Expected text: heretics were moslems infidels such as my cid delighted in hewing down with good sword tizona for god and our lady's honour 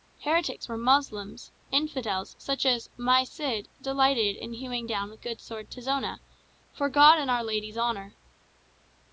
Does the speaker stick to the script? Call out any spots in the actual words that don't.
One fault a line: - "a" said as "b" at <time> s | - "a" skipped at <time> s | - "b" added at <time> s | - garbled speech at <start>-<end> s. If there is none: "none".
none